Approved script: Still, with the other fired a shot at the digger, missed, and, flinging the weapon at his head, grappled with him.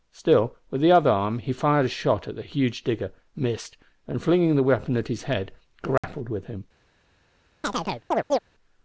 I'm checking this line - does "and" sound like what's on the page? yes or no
yes